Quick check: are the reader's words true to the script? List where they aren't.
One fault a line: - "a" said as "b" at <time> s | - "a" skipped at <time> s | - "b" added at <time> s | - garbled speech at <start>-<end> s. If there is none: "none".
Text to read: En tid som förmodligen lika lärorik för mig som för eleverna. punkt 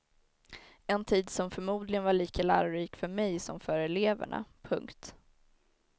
- "var" added at 2.0 s